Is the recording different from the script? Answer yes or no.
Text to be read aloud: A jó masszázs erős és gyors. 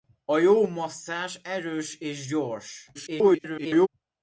yes